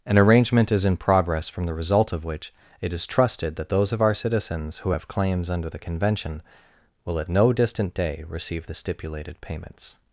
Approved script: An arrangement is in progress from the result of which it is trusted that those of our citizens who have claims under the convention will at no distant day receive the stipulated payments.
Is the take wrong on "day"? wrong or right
right